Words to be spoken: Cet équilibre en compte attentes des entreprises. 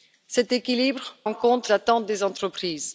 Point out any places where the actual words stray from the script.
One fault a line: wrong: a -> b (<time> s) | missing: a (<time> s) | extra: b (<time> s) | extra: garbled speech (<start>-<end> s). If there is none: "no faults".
no faults